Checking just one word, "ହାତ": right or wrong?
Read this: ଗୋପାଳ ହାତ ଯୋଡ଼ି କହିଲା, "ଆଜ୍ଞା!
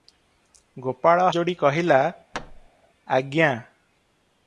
wrong